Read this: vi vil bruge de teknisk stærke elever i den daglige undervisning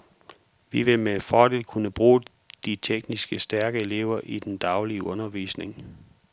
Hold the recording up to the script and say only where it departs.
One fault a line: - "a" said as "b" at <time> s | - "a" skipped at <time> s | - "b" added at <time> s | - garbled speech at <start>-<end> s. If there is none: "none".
- "med fordel kunne" added at 1.0 s